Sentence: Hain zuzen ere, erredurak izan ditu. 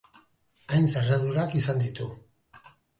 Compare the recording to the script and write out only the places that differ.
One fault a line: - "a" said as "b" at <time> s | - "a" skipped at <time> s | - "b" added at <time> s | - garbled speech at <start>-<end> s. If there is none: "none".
- "zuzen ere" skipped at 0.9 s